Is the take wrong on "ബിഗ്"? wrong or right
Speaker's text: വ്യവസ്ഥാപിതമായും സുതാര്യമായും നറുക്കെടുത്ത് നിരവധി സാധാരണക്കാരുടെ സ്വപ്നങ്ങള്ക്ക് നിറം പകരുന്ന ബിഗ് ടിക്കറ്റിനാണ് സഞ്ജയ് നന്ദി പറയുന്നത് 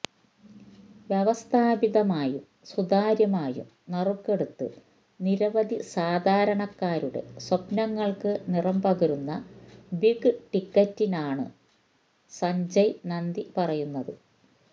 right